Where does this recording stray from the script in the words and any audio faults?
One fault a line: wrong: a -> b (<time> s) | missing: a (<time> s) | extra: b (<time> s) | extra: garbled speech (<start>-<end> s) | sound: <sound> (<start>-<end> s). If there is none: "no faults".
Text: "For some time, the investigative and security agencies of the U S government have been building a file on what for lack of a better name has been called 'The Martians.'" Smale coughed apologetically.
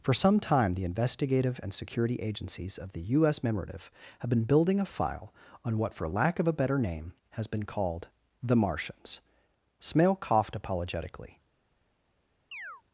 wrong: government -> memorative (3.4 s)
sound: chirp (12.5-12.8 s)